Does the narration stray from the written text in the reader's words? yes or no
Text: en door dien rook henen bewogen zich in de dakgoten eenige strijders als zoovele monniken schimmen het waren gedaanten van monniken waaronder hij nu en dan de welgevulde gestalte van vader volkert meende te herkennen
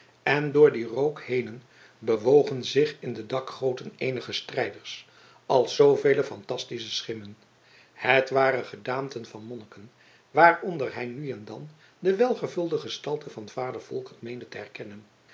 yes